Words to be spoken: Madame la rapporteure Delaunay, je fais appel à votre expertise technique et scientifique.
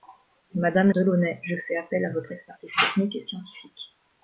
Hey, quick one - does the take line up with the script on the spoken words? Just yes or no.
no